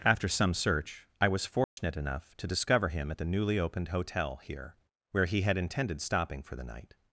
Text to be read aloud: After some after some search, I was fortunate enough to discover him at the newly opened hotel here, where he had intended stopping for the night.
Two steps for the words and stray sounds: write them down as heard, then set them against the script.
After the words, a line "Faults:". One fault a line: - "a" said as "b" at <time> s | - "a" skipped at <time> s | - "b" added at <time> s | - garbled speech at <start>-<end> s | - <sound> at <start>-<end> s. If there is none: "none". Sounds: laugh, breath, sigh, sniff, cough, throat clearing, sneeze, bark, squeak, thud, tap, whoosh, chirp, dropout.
After some search, I was fortunate enough to discover him at the newly opened hotel here, where he had intended stopping for the night.
Faults:
- "after some" skipped at 0.6 s
- dropout at 1.6-1.8 s